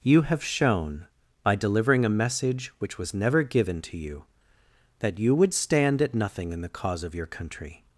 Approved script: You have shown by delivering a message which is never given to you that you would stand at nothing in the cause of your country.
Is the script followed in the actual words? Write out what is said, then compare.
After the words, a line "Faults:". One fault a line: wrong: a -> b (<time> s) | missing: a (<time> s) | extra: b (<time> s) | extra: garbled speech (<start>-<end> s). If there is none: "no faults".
You have shown by delivering a message which was never given to you that you would stand at nothing in the cause of your country.
Faults:
wrong: is -> was (3.0 s)